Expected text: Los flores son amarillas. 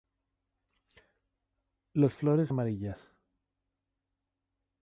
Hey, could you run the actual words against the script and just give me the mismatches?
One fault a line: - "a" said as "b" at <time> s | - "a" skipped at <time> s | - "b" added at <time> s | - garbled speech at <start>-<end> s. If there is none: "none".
- "son" skipped at 2.5 s